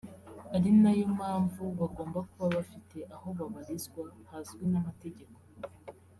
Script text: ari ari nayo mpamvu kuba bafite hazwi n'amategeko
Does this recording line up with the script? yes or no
no